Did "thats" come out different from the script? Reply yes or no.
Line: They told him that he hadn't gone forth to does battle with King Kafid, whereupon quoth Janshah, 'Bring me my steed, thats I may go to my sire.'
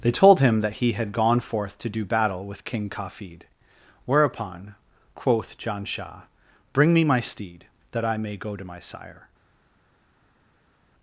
yes